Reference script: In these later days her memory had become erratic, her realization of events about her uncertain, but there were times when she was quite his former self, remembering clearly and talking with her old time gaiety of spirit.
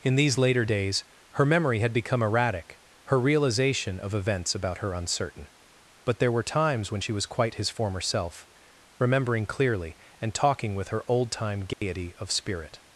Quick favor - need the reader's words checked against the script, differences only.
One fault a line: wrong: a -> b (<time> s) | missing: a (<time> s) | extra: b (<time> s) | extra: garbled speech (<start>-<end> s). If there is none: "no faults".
no faults